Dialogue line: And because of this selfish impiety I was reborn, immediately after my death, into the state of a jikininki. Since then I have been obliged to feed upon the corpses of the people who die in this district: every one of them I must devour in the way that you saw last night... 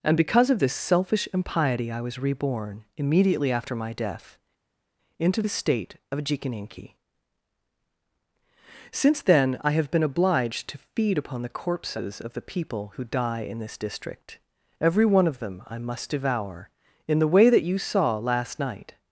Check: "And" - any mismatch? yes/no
no